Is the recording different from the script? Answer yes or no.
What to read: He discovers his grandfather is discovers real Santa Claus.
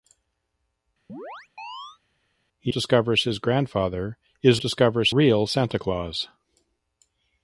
no